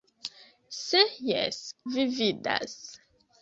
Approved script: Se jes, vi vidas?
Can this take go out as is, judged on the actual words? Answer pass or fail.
pass